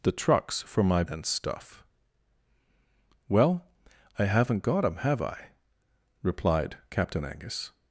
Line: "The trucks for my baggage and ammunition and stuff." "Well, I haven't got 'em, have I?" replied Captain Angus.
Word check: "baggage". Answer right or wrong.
wrong